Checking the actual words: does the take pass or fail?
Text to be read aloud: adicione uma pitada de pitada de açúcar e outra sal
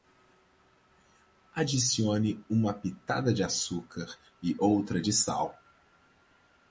fail